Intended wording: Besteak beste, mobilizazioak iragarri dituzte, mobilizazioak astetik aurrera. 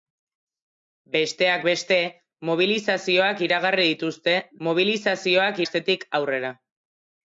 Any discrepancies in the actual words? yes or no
no